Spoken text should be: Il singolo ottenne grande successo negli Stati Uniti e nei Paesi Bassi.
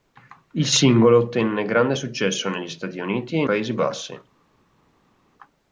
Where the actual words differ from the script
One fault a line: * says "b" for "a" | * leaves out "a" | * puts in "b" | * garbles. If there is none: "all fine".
* leaves out "nei"